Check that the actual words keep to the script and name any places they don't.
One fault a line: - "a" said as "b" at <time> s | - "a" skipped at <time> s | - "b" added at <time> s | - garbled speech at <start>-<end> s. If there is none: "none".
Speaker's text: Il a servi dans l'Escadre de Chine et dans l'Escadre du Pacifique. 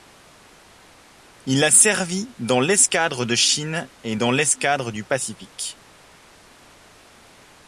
none